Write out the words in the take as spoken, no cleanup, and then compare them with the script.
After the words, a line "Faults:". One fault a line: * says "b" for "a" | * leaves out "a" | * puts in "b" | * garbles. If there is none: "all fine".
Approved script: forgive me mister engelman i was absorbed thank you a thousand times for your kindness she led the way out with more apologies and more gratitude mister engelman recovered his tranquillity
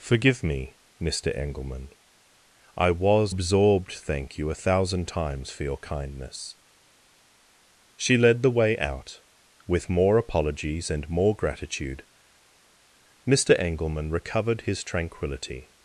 forgive me mister engelman i was absorbed thank you a thousand times for your kindness she led the way out with more apologies and more gratitude mister engelman recovered his tranquillity
Faults:
all fine